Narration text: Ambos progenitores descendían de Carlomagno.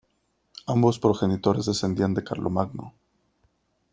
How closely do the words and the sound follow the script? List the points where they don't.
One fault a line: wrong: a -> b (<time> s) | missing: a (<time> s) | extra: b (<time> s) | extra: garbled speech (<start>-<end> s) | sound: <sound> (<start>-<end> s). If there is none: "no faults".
no faults